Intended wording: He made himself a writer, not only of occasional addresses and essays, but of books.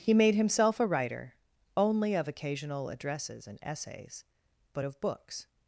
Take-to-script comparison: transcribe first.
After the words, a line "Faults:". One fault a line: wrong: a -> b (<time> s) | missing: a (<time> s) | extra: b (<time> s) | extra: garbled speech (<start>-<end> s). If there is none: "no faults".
He made himself a writer, only of occasional addresses and essays, but of books.
Faults:
missing: not (1.4 s)